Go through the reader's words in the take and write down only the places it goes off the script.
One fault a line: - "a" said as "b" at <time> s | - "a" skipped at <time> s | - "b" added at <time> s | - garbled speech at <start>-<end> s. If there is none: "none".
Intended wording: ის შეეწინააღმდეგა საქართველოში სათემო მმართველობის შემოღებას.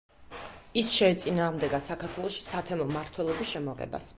none